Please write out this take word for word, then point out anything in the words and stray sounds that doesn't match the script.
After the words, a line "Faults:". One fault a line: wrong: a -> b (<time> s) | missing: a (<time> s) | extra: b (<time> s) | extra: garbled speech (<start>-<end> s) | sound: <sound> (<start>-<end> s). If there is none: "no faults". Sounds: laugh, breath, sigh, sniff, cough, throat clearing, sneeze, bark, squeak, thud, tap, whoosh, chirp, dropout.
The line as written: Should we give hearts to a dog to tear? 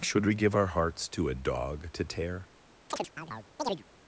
Should we give our hearts to a dog to tear?
Faults:
extra: our (0.6 s)
sound: chirp (2.9-3.8 s)